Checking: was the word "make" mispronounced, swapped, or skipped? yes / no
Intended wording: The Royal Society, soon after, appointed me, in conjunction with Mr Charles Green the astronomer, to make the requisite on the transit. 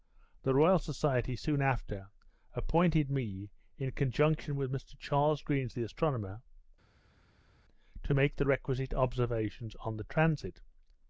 no